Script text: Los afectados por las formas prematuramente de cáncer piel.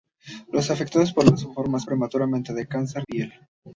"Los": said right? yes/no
yes